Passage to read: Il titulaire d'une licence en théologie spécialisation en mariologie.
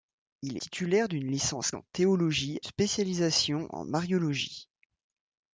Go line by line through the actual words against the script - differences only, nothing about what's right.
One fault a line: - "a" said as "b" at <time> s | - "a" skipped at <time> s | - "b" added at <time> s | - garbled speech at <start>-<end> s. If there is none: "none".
none